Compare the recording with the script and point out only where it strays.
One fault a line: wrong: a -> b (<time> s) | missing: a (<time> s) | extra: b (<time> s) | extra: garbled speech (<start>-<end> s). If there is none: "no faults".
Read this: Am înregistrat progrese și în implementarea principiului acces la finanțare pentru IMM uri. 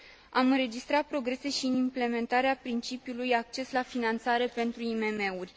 no faults